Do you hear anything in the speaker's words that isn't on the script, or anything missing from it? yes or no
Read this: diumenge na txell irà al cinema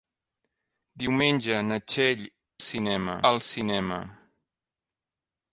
yes